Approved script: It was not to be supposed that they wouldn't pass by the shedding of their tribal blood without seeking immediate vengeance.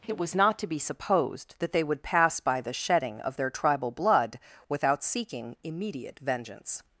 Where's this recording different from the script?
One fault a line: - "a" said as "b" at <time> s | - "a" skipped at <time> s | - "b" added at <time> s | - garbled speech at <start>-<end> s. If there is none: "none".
- "wouldn't" said as "would" at 1.8 s